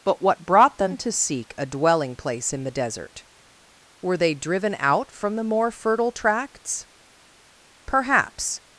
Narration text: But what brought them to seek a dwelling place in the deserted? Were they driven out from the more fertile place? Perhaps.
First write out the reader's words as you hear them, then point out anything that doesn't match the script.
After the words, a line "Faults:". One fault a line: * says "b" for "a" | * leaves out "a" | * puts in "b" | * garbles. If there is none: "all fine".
But what brought them to seek a dwelling place in the desert? Were they driven out from the more fertile tracts? Perhaps.
Faults:
* says "desert" for "deserted"
* says "tracts" for "place"